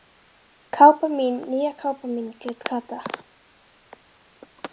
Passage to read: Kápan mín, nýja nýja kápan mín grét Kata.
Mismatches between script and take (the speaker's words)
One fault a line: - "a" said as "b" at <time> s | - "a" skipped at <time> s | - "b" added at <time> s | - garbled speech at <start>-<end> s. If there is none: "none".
- "nýja" skipped at 1.7 s